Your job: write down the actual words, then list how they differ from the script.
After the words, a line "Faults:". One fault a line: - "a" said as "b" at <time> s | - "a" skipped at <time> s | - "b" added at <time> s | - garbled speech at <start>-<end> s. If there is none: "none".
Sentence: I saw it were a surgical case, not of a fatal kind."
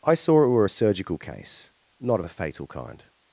I saw it were a surgical case, not of a fatal kind."
Faults:
none